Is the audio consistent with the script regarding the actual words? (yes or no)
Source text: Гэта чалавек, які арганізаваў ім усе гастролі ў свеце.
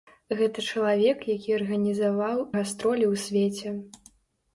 no